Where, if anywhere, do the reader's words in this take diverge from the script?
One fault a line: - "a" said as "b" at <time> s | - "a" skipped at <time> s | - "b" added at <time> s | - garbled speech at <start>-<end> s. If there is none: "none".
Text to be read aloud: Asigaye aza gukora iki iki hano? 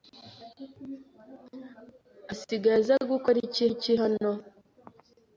none